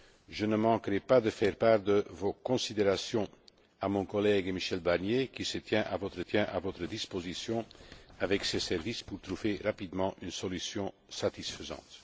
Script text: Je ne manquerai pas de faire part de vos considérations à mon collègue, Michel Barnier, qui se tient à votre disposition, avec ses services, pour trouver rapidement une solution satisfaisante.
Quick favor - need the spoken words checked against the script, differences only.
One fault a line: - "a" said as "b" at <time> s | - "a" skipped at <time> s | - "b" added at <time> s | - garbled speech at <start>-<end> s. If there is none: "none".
- "tient à votre" added at 6.2 s